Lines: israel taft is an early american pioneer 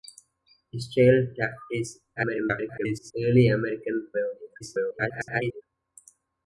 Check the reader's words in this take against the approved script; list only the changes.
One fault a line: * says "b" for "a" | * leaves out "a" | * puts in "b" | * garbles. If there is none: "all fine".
* garbles
* garbles